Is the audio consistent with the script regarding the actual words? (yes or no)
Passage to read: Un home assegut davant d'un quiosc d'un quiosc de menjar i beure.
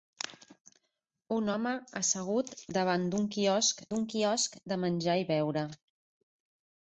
yes